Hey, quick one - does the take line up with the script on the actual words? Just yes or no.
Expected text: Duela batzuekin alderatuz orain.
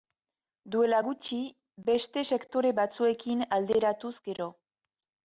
no